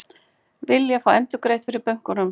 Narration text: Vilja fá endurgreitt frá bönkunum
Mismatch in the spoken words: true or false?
false